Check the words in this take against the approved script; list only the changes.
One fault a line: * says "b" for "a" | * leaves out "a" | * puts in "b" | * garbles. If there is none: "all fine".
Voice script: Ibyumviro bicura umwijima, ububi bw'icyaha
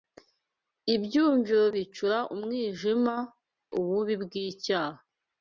all fine